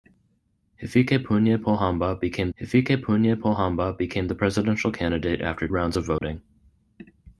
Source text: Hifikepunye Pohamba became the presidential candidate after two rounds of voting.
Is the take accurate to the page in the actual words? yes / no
no